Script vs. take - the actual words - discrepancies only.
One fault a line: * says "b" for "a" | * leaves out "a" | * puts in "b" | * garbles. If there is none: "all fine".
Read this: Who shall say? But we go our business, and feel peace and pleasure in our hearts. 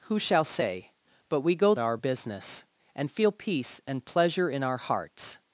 all fine